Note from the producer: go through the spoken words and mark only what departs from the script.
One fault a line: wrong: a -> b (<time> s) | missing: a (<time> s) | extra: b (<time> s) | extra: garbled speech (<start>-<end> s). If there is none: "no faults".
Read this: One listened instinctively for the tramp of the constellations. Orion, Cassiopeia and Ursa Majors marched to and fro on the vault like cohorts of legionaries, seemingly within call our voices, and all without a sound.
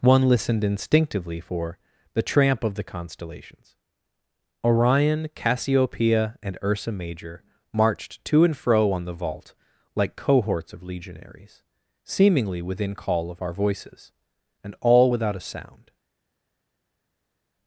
wrong: Majors -> Major (6.9 s)
extra: of (13.3 s)